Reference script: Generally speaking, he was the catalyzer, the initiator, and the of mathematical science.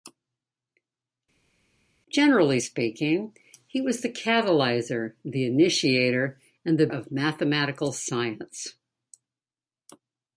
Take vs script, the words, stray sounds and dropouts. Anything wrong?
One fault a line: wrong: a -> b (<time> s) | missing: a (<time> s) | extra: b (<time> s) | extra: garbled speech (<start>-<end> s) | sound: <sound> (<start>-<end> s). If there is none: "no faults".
no faults